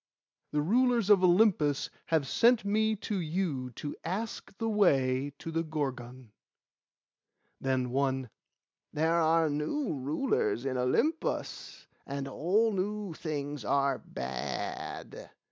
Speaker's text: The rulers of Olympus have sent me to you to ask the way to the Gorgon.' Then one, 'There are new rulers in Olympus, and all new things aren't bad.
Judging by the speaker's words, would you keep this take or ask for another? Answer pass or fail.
fail